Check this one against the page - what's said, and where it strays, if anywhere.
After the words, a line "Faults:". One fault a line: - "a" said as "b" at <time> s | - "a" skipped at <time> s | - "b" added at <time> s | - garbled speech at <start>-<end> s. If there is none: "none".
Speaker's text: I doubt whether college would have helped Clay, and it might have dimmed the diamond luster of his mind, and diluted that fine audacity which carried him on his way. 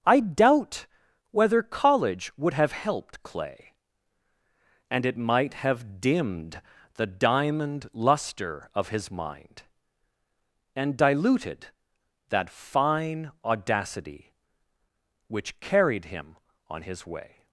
I doubt whether college would have helped Clay, and it might have dimmed the diamond luster of his mind, and diluted that fine audacity which carried him on his way.
Faults:
none